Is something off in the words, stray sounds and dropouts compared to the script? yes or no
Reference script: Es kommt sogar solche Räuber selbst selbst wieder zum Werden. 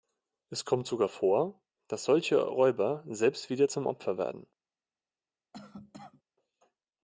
yes